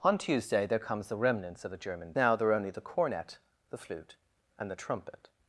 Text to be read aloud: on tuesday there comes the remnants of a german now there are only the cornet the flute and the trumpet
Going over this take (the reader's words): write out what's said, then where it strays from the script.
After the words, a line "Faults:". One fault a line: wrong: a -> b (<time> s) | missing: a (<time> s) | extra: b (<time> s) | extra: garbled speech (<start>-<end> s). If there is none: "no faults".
on tuesday there comes the remnants of a german now there are only the cornet the flute and the trumpet
Faults:
no faults